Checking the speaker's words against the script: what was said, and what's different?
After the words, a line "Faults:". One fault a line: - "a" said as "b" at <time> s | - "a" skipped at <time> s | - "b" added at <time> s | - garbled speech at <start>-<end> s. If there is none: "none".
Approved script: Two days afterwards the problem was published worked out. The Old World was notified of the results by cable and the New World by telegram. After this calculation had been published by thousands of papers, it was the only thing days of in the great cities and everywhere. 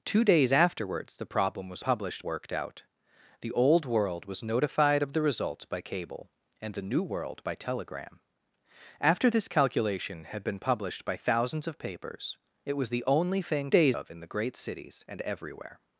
Two days afterwards the problem was published worked out. The Old World was notified of the results by cable and the New World by telegram. After this calculation had been published by thousands of papers, it was the only thing days of in the great cities and everywhere.
Faults:
none